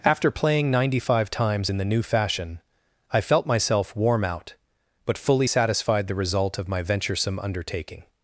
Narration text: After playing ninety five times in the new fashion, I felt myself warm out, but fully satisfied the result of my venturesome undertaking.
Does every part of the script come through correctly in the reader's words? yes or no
yes